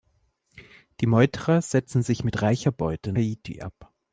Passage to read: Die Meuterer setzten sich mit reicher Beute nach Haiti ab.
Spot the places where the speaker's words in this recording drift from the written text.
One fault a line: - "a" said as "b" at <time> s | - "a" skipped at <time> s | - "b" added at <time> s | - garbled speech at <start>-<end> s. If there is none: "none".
- "nach" skipped at 3.1 s